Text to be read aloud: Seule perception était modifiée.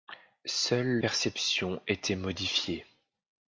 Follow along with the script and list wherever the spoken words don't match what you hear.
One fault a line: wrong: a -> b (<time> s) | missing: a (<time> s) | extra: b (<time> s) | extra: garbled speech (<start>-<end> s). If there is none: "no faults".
no faults